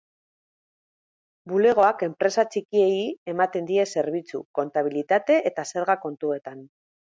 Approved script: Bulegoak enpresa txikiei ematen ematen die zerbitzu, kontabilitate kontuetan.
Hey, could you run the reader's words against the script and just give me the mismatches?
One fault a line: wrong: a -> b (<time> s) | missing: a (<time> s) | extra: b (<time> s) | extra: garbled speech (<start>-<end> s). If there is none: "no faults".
missing: ematen (3.7 s)
extra: eta zerga (5.5 s)